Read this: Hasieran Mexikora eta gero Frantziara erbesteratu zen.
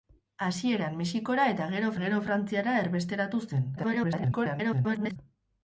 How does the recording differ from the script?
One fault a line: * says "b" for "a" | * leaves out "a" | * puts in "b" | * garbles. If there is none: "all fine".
* puts in "gero"
* garbles